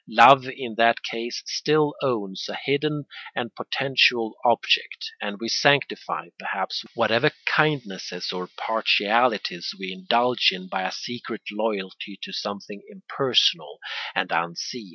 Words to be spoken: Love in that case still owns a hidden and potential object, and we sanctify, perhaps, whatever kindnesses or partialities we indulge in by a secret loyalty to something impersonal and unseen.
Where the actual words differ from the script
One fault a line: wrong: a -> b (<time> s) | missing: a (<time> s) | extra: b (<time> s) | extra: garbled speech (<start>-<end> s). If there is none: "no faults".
no faults